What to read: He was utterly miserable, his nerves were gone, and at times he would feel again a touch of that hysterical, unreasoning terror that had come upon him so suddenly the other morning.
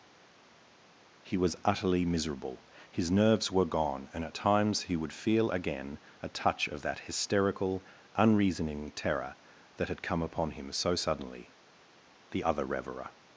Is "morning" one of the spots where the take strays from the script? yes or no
yes